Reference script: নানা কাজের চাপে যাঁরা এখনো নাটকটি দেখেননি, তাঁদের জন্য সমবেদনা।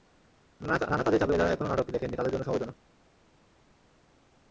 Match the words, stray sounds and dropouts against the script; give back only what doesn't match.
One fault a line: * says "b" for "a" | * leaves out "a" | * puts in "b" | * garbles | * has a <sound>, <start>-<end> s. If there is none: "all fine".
all fine